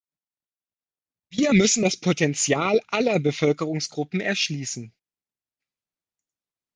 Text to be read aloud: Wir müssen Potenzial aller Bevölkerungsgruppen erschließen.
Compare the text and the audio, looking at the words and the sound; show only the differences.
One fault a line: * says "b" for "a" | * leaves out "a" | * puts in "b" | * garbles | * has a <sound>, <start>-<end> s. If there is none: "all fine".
* puts in "das"